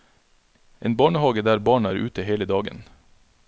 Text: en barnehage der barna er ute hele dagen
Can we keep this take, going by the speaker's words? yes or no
yes